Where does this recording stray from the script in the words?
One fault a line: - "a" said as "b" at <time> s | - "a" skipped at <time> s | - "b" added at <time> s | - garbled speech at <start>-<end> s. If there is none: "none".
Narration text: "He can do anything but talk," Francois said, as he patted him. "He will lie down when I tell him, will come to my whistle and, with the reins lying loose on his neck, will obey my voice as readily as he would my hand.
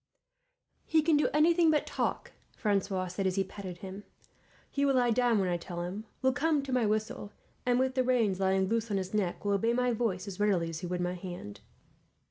none